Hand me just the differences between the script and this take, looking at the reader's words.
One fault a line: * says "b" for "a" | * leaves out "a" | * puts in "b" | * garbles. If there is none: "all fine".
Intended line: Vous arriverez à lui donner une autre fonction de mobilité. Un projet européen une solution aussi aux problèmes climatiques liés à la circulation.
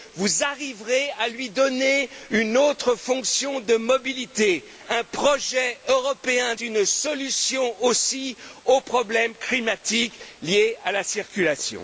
all fine